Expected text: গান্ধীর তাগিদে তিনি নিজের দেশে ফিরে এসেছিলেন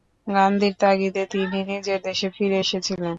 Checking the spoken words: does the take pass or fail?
pass